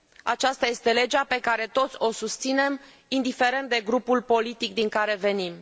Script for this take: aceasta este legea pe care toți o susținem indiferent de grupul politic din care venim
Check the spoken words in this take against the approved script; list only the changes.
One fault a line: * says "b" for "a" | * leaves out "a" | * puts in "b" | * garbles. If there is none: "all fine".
all fine